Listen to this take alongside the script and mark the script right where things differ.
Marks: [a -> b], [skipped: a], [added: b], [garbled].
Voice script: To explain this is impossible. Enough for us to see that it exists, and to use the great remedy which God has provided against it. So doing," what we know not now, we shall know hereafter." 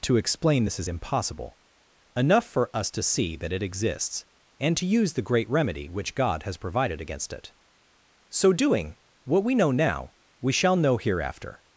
To explain this is impossible. Enough for us to see that it exists, and to use the great remedy which God has provided against it. So doing," what we know [skipped: not] now, we shall know hereafter."